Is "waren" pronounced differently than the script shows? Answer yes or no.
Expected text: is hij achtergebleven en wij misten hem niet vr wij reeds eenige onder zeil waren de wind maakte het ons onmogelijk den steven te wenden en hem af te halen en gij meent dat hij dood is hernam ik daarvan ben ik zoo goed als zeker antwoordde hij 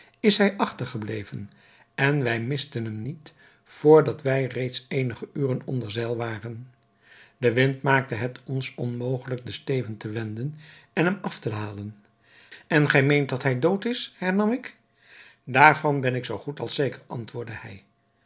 no